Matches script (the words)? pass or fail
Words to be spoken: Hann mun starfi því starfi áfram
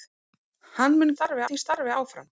pass